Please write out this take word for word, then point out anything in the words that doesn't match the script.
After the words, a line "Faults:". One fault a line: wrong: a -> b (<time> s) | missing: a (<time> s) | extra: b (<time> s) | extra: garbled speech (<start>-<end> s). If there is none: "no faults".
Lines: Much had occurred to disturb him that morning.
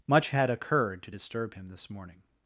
Much had occurred to disturb him this morning.
Faults:
wrong: that -> this (1.7 s)